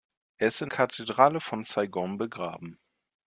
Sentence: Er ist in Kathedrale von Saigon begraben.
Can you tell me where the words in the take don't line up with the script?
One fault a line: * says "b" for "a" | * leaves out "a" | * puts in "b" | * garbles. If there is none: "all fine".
all fine